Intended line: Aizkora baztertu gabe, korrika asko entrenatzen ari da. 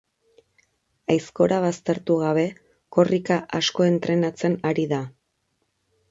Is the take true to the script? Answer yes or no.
yes